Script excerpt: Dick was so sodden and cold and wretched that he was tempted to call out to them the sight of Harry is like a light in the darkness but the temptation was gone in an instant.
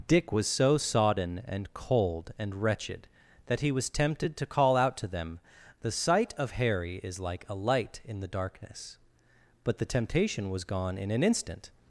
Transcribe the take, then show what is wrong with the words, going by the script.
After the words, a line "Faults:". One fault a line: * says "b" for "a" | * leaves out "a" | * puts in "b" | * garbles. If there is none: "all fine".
Dick was so sodden and cold and wretched that he was tempted to call out to them the sight of Harry is like a light in the darkness but the temptation was gone in an instant.
Faults:
all fine